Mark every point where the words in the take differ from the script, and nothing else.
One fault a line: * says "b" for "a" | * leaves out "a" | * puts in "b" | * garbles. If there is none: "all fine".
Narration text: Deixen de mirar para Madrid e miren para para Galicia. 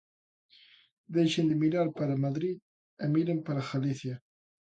* leaves out "para"